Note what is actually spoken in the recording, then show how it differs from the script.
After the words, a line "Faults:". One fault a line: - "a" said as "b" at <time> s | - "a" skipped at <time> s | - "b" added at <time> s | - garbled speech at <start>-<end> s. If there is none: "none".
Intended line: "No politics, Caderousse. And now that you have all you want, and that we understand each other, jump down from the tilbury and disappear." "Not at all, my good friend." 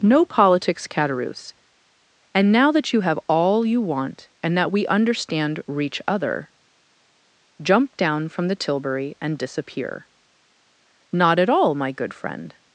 "No politics, Caderousse. And now that you have all you want, and that we understand reach other, jump down from the tilbury and disappear." "Not at all, my good friend."
Faults:
- "each" said as "reach" at 5.7 s